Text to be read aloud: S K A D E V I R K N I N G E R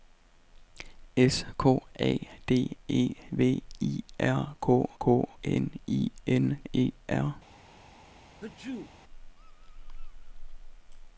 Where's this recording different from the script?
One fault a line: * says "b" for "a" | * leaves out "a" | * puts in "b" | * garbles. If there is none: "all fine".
* puts in "K"
* leaves out "G"